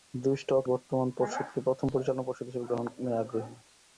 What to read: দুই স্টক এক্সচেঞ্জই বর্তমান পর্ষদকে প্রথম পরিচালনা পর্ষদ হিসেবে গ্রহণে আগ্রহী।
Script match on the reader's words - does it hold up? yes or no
no